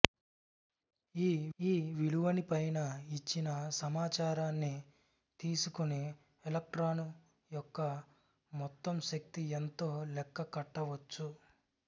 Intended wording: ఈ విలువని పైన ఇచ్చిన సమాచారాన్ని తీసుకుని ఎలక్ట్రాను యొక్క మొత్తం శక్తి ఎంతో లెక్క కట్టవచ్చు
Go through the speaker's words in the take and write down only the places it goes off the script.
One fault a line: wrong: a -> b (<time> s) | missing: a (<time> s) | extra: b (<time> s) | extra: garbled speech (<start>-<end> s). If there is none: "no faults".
extra: ఈ (1.6 s)